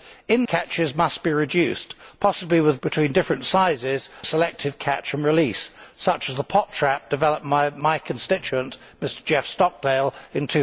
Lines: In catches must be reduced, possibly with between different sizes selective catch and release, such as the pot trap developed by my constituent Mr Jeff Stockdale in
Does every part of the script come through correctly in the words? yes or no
yes